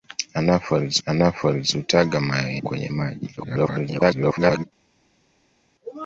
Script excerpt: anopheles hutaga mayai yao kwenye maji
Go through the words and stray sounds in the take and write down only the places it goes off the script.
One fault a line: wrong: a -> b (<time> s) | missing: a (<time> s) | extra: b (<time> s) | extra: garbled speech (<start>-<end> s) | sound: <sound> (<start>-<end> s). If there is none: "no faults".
extra: anopheles (1.0 s)
missing: yao (2.6 s)
extra: garbled speech (3.4-4.6 s)